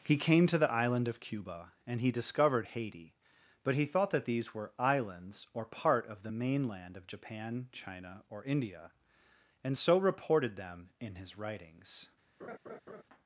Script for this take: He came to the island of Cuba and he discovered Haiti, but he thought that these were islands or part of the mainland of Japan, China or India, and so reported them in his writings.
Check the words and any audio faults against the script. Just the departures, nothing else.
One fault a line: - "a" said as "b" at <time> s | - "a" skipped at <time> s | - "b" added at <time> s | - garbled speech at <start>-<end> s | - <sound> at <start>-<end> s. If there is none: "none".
- laugh at 12.4-13.0 s